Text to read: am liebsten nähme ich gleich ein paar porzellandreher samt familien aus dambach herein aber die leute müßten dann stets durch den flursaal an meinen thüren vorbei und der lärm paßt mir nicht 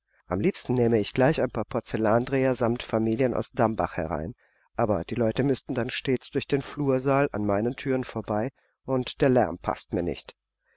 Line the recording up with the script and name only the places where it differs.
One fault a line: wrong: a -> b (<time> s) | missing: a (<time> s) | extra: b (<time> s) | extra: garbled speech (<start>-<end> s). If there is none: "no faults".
no faults